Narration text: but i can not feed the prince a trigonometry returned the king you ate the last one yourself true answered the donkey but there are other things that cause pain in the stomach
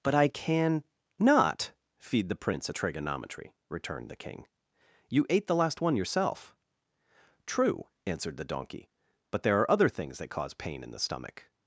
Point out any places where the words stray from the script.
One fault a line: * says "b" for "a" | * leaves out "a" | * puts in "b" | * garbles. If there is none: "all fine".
all fine